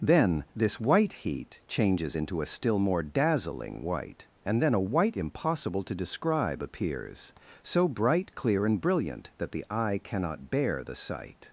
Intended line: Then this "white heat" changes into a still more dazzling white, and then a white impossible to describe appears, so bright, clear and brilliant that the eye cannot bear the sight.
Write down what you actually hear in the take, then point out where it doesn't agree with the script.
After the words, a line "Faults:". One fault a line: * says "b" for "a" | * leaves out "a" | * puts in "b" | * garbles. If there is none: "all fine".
Then this "white heat" changes into a still more dazzling white, and then a white impossible to describe appears, so bright, clear and brilliant that the eye cannot bear the sight.
Faults:
all fine